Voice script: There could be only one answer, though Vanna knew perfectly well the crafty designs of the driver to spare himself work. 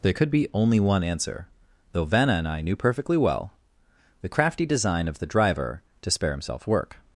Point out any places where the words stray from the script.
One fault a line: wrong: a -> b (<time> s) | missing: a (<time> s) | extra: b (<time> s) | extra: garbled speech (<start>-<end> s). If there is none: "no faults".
extra: and I (2.3 s)
wrong: designs -> design (4.6 s)